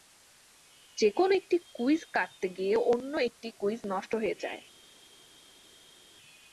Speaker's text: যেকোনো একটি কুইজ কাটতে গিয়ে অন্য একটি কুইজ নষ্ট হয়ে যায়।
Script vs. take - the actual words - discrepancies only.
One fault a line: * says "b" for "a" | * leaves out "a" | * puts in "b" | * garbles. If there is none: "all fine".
all fine